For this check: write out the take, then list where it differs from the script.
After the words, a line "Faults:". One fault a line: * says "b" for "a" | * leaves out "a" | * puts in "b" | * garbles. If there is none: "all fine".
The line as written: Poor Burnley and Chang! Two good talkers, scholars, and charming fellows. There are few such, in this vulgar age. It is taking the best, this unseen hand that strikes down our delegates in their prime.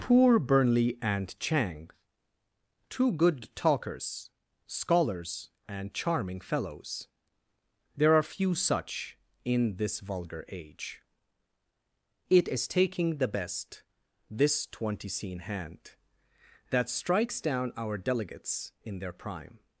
Poor Burnley and Chang! Two good talkers, scholars, and charming fellows. There are few such, in this vulgar age. It is taking the best, this twenty scene hand that strikes down our delegates in their prime.
Faults:
* says "twenty scene" for "unseen"